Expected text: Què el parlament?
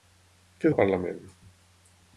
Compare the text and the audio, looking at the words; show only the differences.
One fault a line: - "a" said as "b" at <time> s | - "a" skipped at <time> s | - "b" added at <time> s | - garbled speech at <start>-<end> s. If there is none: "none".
none